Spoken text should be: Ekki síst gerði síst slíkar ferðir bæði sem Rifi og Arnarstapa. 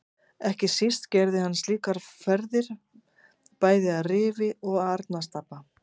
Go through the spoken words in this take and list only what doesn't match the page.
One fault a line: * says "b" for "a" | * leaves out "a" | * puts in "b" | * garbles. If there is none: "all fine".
* says "hann" for "síst"
* says "að" for "sem"